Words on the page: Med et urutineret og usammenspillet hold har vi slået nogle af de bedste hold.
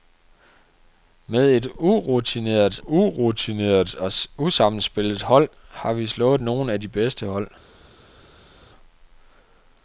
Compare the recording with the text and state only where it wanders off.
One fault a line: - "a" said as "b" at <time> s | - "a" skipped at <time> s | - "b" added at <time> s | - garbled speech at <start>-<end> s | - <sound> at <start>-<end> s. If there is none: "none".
- "urutineret" added at 2.8 s